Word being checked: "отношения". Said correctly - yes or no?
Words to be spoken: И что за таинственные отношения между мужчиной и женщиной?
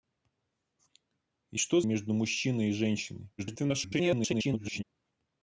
no